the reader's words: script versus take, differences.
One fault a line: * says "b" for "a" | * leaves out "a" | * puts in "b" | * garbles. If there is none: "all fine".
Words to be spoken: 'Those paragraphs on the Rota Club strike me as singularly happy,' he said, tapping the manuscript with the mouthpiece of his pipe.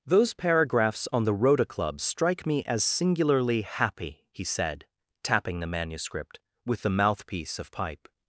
* leaves out "his"